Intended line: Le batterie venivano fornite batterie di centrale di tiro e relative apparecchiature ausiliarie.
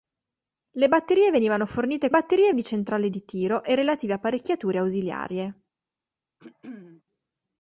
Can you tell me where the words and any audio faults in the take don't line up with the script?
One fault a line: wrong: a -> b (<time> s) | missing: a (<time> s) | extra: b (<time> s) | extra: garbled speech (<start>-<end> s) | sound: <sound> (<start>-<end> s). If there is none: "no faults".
sound: throat clearing (6.4-7.0 s)